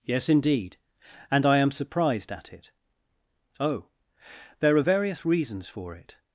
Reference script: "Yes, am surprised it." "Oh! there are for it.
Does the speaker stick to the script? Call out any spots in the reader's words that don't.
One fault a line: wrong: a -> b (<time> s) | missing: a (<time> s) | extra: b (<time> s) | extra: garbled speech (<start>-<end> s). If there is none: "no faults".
extra: indeed and I (0.3 s)
extra: at (2.3 s)
extra: various reasons (4.8 s)